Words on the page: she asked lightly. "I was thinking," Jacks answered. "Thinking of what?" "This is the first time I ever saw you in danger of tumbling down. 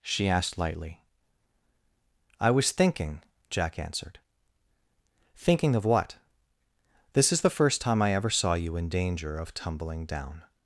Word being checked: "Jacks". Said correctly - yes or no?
no